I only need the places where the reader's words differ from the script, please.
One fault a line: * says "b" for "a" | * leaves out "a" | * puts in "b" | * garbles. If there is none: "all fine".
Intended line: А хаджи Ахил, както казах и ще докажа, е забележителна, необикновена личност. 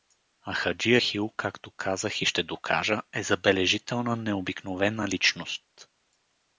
all fine